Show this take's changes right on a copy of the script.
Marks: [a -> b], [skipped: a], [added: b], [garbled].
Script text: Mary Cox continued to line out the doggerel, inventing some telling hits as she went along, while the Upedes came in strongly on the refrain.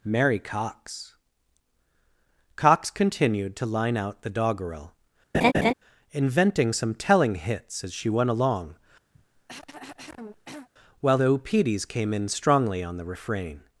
Mary Cox [added: Cox] continued to line out the doggerel, inventing some telling hits as she went along, while the Upedes came in strongly on the refrain.